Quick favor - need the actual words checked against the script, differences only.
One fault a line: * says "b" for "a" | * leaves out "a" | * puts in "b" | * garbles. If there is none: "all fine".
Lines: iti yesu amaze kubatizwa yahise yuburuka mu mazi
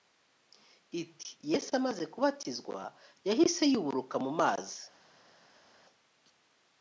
all fine